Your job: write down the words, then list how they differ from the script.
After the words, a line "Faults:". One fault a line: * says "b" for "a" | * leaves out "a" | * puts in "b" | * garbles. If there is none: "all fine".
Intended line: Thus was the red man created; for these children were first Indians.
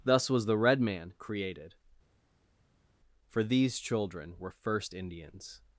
Thus was the red man created; for these children were first Indians.
Faults:
all fine